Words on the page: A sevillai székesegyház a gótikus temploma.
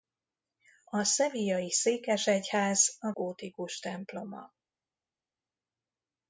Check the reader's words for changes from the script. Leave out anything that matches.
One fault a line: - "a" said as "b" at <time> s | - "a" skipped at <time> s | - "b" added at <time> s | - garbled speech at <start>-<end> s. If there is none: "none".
none